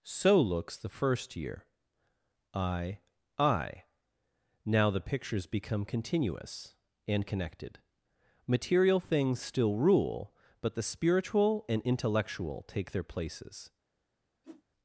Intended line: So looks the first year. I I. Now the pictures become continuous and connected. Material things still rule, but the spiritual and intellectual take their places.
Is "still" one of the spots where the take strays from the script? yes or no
no